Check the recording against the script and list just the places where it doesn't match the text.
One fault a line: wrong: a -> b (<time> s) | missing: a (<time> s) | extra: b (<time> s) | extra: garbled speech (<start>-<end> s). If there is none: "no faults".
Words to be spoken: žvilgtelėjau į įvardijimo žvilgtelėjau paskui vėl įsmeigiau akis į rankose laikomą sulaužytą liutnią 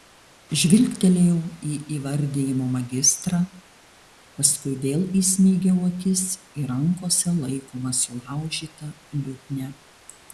wrong: žvilgtelėjau -> magistrą (2.8 s)